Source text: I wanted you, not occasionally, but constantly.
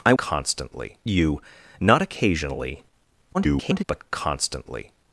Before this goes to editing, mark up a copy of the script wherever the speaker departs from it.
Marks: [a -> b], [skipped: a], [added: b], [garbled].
I [wanted -> constantly] you, not occasionally, [garbled] but constantly.